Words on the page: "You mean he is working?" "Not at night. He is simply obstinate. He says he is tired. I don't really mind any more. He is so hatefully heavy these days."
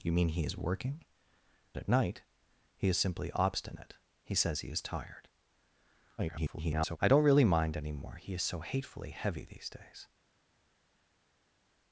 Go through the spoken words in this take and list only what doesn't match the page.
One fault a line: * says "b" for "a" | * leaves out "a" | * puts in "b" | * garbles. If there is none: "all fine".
* leaves out "Not"
* garbles